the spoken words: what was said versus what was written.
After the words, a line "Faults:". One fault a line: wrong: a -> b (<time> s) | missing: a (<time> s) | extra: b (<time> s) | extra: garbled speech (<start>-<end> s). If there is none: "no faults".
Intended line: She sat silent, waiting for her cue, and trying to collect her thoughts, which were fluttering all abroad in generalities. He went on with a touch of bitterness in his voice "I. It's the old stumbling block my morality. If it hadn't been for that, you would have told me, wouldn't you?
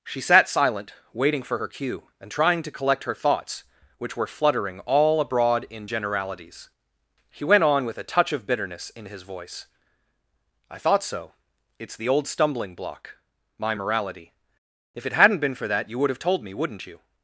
She sat silent, waiting for her cue, and trying to collect her thoughts, which were fluttering all abroad in generalities. He went on with a touch of bitterness in his voice "I thought so. It's the old stumbling block my morality. If it hadn't been for that, you would have told me, wouldn't you?
Faults:
extra: thought so (10.8 s)